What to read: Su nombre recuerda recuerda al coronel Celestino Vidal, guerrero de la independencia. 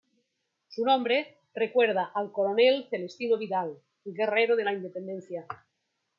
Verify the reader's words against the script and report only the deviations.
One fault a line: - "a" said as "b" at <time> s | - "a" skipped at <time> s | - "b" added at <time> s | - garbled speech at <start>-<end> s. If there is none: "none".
- "recuerda" skipped at 2.1 s